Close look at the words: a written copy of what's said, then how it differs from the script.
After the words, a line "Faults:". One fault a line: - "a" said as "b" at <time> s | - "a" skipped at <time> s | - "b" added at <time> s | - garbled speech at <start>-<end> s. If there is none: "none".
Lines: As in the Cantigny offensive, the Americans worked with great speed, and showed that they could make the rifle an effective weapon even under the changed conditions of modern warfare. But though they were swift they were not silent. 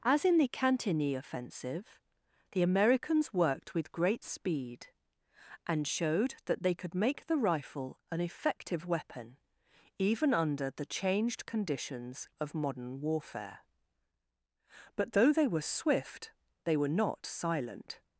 As in the Cantigny offensive, the Americans worked with great speed, and showed that they could make the rifle an effective weapon even under the changed conditions of modern warfare. But though they were swift they were not silent.
Faults:
none